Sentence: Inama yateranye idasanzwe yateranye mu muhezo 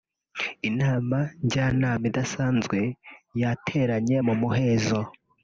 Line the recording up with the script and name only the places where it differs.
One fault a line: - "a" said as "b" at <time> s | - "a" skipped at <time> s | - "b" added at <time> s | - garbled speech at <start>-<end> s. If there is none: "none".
- "yateranye" said as "njyanama" at 1.4 s